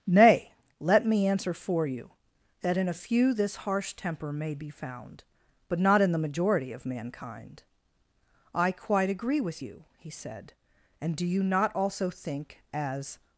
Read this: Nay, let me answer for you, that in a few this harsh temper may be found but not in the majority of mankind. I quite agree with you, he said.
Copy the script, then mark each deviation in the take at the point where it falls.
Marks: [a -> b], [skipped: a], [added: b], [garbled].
Nay, let me answer for you, that in a few this harsh temper may be found but not in the majority of mankind. I quite agree with you, he said. [added: And do you not also think as]